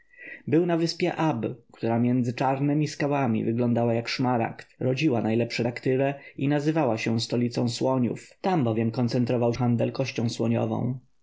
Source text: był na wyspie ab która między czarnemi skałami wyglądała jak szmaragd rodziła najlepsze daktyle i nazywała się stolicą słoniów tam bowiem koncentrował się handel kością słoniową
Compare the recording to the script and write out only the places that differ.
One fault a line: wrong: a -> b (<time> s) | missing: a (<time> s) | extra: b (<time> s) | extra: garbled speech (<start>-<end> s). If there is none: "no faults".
missing: się (9.5 s)